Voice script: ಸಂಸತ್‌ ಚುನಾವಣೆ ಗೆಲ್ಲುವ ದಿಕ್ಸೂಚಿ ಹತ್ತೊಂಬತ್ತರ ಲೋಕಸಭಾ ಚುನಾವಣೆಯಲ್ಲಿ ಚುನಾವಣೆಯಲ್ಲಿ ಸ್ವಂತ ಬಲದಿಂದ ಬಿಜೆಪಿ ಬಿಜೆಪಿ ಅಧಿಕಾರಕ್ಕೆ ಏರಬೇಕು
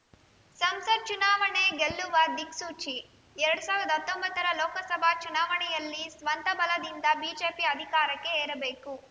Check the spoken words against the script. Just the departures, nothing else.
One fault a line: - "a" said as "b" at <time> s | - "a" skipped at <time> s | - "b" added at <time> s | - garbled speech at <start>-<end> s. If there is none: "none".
- "ಎರಡ್ ಸಾವಿರದ" added at 3.4 s
- "ಚುನಾವಣೆಯಲ್ಲಿ" skipped at 6.0 s
- "ಬಿಜೆಪಿ" skipped at 7.7 s